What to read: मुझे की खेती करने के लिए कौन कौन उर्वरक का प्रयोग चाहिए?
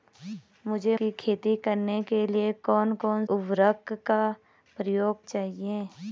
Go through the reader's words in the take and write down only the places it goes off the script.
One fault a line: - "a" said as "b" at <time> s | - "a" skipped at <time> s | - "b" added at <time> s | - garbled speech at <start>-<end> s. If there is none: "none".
none